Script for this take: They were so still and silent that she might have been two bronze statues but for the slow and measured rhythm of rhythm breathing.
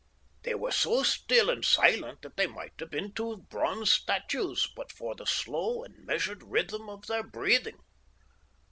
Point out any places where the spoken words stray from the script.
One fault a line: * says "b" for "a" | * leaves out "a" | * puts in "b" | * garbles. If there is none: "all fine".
* says "they" for "she"
* says "their" for "rhythm"